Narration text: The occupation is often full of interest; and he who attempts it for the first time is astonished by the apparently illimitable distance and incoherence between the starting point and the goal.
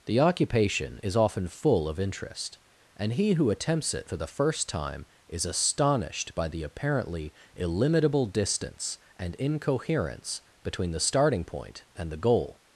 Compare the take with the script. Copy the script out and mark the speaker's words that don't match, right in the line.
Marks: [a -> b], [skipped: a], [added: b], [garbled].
The occupation is often full of interest; and he who attempts it for the first time is astonished by the apparently illimitable distance and incoherence between the starting point and the goal.